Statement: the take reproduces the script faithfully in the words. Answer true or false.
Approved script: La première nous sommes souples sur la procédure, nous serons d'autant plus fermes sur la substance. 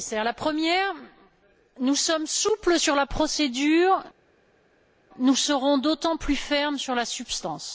true